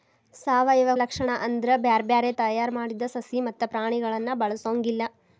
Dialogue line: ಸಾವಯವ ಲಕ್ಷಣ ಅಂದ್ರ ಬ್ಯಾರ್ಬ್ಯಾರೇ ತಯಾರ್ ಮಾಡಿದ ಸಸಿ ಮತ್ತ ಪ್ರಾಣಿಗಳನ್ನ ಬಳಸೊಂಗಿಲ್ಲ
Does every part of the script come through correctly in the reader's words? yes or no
yes